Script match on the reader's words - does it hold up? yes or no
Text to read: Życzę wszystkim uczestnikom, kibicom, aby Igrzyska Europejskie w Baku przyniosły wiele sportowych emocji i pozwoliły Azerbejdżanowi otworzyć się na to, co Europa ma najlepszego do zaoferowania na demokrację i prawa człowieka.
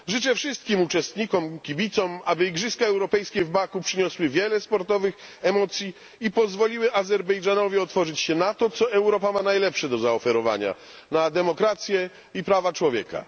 yes